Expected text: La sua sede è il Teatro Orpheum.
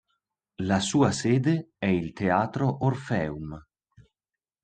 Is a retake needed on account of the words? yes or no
no